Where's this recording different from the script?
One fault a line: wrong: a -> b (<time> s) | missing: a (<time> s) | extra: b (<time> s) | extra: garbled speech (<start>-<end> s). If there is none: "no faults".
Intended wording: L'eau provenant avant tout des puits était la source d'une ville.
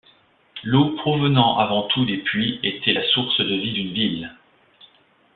extra: de vie (3.4 s)